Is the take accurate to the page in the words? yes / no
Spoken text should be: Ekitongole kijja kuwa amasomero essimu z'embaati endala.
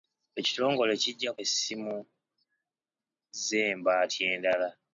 no